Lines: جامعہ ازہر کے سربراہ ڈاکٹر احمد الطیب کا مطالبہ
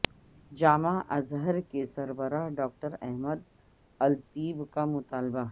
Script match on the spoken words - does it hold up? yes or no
yes